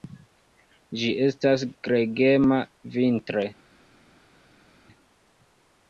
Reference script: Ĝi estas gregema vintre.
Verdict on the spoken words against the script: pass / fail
pass